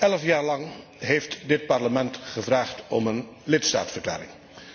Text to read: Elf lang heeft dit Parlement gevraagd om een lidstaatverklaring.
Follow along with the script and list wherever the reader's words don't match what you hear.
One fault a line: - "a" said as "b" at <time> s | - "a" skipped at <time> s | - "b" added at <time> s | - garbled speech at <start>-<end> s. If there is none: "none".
- "jaar" added at 0.2 s